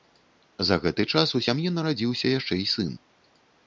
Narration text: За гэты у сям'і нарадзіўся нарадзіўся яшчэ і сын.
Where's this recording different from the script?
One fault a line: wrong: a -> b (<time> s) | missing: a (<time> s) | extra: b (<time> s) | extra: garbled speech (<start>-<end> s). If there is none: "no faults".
extra: час (1.1 s)
missing: нарадзіўся (2.3 s)